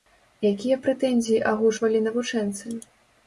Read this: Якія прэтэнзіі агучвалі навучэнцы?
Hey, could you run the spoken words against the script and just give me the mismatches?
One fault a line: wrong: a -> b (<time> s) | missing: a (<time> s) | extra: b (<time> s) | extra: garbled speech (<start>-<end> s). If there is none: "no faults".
no faults